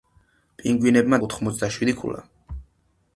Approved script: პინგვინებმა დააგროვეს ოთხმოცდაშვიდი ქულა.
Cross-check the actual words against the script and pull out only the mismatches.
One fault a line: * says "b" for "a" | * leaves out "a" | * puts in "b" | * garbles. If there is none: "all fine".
* leaves out "დააგროვეს"